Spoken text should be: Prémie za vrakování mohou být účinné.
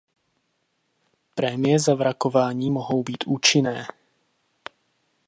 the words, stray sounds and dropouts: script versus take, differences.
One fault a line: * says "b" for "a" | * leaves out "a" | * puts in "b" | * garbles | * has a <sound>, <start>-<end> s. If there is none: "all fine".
all fine